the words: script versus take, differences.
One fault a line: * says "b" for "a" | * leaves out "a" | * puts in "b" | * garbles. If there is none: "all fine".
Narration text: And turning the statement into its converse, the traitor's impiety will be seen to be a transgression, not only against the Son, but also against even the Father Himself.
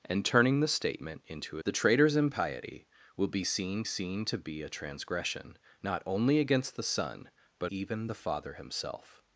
* leaves out "its converse"
* puts in "seen"
* leaves out "also against"